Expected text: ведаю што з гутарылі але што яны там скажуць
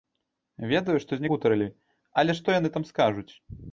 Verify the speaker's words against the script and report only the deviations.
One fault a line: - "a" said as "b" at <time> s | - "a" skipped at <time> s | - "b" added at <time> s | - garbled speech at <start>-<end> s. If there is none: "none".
none